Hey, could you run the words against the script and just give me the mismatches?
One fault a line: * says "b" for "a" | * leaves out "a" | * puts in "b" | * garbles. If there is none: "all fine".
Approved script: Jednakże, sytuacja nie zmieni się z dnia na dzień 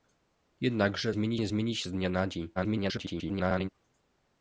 * says "zmieni" for "sytuacja"
* garbles